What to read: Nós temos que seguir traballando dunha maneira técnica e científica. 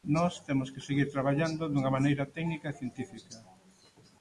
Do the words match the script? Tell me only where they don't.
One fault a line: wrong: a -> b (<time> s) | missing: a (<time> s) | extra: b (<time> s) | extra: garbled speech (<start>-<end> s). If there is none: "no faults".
no faults